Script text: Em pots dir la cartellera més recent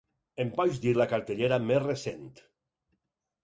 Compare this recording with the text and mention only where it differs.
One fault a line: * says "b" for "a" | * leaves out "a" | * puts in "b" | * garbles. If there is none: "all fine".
all fine